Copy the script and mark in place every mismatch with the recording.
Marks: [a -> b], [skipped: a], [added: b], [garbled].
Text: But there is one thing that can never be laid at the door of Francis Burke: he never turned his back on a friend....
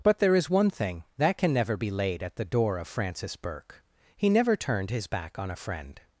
But there is one thing that can never be laid at the door of Francis Burke: he never turned his back on a friend....